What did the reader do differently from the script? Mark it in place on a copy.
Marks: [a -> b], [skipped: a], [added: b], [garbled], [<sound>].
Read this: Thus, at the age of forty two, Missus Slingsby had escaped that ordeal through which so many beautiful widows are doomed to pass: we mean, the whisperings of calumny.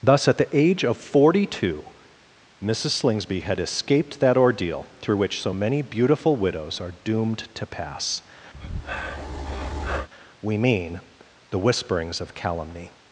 Thus, at the age of forty two, Missus Slingsby had escaped that ordeal through which so many beautiful widows are doomed to pass: [breath] we mean, the whisperings of calumny.